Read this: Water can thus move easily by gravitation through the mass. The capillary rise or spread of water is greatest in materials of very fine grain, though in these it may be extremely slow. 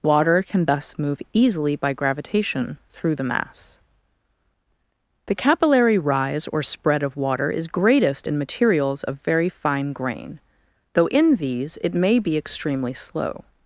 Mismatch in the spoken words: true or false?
false